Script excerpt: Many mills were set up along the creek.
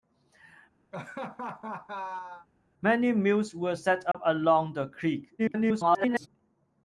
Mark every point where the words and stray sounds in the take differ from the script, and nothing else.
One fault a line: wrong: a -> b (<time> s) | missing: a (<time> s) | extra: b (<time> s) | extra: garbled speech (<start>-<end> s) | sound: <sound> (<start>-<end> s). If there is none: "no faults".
sound: laugh (0.9-2.5 s)
sound: dropout (4.1-4.1 s)
extra: garbled speech (5.4-6.3 s)